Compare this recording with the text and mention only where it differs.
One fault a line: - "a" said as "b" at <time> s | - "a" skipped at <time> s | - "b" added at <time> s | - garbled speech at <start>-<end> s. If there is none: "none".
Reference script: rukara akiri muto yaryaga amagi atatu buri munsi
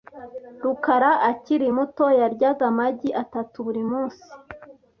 none